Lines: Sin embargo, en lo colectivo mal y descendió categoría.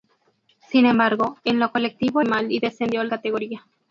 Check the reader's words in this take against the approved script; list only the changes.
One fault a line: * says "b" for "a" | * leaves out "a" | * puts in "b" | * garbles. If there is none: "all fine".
all fine